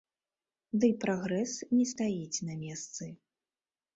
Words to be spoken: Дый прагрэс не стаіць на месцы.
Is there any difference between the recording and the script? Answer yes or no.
no